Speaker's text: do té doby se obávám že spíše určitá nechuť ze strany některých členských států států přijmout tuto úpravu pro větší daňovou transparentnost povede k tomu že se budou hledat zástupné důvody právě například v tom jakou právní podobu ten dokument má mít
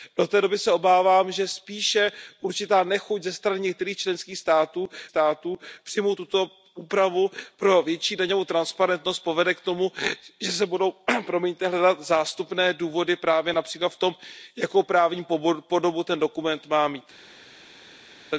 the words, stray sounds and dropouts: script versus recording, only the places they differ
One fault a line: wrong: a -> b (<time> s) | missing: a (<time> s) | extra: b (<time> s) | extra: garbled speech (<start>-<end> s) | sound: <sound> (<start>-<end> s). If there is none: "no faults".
no faults